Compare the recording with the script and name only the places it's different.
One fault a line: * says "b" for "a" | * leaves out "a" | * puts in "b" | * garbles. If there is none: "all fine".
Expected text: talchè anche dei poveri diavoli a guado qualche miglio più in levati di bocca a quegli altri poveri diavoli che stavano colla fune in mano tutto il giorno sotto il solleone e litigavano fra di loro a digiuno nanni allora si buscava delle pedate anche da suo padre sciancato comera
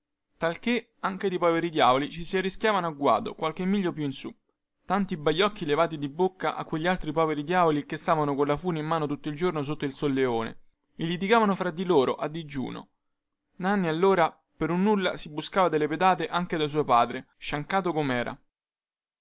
* puts in "ci si arrischiavano"
* puts in "su tanti baiocchi"
* puts in "per un nulla"